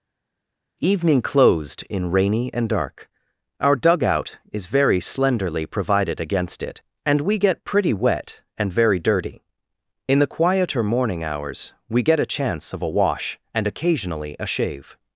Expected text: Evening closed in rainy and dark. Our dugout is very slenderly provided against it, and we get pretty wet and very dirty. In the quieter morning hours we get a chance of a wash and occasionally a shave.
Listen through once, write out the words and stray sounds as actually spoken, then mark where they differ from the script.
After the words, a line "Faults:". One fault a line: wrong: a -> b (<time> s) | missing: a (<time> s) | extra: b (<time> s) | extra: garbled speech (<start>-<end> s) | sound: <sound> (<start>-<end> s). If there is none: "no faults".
Evening closed in rainy and dark. Our dugout is very slenderly provided against it, and we get pretty wet and very dirty. In the quieter morning hours we get a chance of a wash and occasionally a shave.
Faults:
no faults